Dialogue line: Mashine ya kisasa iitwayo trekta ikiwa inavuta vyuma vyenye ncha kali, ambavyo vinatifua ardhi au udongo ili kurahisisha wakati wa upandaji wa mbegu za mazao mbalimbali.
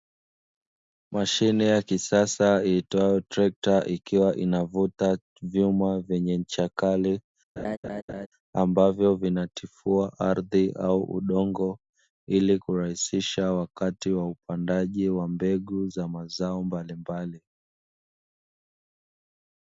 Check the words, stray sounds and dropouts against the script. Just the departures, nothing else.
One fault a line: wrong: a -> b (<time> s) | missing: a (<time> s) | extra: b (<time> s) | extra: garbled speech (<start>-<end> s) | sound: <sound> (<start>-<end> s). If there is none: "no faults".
sound: laugh (7.6-8.3 s)